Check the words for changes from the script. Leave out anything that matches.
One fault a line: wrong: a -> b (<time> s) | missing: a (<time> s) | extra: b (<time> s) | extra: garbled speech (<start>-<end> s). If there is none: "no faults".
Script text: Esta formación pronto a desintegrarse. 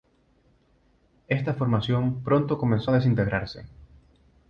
extra: comenzó (2.6 s)